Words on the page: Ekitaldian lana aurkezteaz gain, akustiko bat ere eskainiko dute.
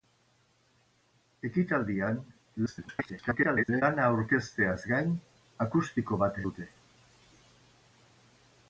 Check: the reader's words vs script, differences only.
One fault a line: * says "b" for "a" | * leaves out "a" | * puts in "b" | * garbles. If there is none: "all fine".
* garbles
* leaves out "ere eskainiko"